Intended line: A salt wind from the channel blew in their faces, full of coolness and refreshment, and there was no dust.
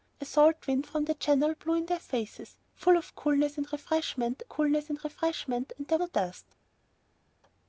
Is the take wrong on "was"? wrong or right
wrong